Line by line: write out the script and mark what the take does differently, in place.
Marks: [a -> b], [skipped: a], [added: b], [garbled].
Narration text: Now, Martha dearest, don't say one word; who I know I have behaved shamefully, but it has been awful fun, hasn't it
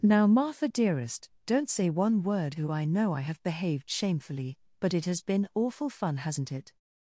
Now, Martha dearest, don't say one word; who I know I have behaved shamefully, but it has been awful fun, hasn't it